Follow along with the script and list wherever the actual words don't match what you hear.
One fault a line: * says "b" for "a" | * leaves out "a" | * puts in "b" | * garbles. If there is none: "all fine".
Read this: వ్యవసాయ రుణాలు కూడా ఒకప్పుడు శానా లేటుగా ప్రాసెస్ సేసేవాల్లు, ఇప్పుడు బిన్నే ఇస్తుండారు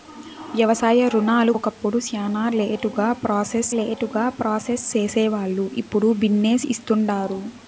* leaves out "కూడా"
* puts in "లేటుగా ప్రాసెస్"